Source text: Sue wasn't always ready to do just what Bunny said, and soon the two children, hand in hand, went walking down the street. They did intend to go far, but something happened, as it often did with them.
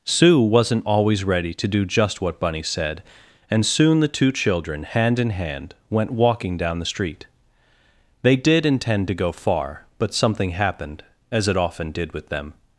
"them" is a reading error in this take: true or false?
false